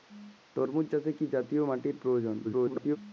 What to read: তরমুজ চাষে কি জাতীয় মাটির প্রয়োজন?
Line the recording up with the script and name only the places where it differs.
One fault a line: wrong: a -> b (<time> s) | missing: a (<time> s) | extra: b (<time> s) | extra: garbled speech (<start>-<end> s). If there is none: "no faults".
extra: garbled speech (2.4-3.0 s)